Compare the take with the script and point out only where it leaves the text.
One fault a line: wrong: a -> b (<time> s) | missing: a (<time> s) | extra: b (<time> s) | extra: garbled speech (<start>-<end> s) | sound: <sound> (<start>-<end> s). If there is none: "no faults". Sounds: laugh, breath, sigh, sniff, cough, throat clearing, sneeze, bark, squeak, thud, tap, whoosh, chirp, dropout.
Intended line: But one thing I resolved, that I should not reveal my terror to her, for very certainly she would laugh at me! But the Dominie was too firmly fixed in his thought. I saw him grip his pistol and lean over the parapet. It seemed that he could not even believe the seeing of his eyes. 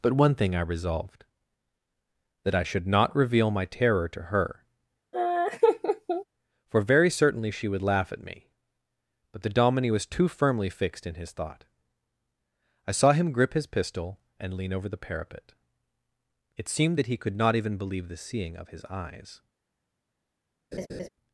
sound: laugh (5.1-6.2 s)
sound: laugh (20.7-21.1 s)